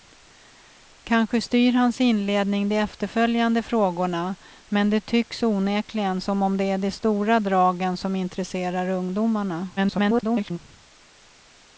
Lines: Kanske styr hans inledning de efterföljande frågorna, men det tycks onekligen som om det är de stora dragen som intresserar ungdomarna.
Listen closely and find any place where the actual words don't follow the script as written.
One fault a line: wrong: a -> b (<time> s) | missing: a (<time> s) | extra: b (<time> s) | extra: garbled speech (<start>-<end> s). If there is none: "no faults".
extra: garbled speech (9.8-10.6 s)